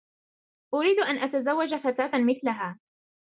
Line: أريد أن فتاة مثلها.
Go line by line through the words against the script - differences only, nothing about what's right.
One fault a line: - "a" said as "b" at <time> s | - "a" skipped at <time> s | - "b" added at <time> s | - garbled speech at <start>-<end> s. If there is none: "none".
- "أتزوج" added at 1.2 s